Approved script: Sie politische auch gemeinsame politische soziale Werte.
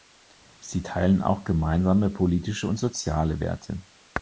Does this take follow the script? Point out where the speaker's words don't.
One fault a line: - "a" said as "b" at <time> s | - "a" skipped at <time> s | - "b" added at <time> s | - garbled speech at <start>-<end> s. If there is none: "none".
- "politische" said as "teilen" at 0.8 s
- "und" added at 2.7 s